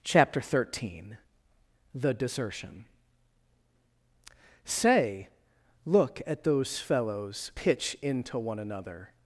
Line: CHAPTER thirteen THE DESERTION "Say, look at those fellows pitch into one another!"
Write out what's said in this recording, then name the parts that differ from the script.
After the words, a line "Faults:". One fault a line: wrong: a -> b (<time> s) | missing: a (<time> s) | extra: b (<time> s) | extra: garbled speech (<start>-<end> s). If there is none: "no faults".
CHAPTER thirteen THE DESERTION "Say, look at those fellows pitch into one another!"
Faults:
no faults